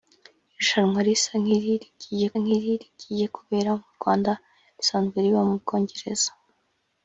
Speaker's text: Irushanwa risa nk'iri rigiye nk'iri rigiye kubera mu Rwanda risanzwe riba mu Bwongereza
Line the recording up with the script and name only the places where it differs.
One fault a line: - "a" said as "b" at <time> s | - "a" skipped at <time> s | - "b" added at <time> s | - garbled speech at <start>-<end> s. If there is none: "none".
none